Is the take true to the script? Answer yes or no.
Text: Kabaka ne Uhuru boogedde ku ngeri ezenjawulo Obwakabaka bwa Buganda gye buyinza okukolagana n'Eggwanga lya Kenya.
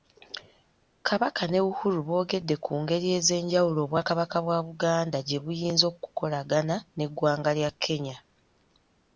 yes